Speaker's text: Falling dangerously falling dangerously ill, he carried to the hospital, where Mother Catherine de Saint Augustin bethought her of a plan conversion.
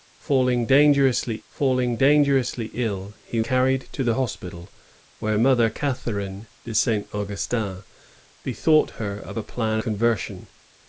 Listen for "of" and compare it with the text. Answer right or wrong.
right